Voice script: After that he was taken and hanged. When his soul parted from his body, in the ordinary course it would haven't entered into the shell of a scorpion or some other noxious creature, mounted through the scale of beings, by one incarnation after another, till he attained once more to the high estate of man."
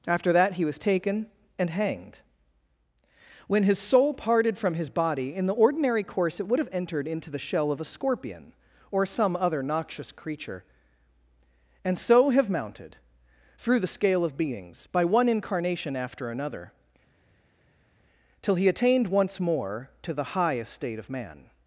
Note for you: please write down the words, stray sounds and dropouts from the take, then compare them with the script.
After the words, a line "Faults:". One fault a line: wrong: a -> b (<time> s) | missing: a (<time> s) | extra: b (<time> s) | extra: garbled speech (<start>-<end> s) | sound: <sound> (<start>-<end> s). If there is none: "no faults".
After that he was taken and hanged. When his soul parted from his body, in the ordinary course it would have entered into the shell of a scorpion or some other noxious creature, and so have mounted through the scale of beings, by one incarnation after another, till he attained once more to the high estate of man."
Faults:
wrong: haven't -> have (6.6 s)
extra: and so have (11.8 s)